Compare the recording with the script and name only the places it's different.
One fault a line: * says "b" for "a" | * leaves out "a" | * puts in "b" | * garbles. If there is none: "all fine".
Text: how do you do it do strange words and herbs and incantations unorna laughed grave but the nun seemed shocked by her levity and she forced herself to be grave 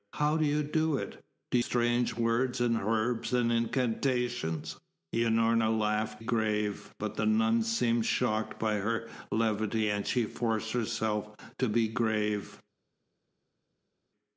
all fine